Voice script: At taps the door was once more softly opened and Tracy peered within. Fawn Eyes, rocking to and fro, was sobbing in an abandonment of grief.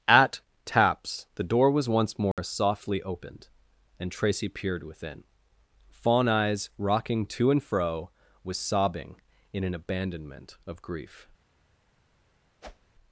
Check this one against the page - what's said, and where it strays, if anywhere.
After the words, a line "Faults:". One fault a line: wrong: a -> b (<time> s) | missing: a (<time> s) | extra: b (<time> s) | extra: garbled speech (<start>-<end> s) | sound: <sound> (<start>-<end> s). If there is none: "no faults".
At taps the door was once more softly opened and Tracy peered within. Fawn Eyes, rocking to and fro, was sobbing in an abandonment of grief.
Faults:
sound: dropout (2.3-2.4 s)
sound: whoosh (12.6-12.9 s)